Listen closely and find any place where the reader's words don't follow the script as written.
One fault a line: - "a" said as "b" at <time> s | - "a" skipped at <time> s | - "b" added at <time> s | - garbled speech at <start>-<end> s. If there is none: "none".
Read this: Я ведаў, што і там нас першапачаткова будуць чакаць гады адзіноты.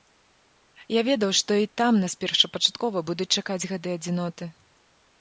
none